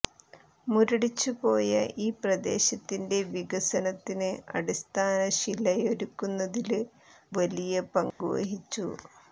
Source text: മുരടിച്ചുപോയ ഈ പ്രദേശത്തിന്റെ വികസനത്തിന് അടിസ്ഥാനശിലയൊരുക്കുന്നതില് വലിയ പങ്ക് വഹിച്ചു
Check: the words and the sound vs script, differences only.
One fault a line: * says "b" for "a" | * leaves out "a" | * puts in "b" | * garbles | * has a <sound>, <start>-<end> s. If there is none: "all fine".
* has a dropout, 8.1-8.2 s